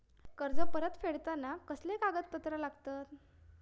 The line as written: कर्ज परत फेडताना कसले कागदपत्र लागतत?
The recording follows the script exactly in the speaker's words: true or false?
true